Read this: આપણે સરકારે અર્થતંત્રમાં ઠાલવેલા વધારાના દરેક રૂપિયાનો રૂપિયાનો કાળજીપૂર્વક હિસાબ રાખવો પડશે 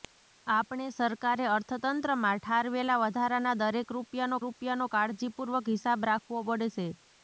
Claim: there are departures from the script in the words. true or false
false